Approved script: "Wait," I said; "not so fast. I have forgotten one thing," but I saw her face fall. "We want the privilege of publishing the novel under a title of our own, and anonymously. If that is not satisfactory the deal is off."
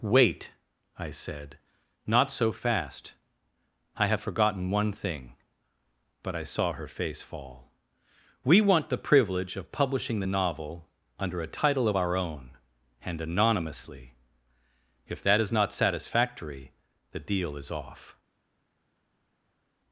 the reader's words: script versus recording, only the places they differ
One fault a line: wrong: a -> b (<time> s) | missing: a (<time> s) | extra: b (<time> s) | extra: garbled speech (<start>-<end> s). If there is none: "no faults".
no faults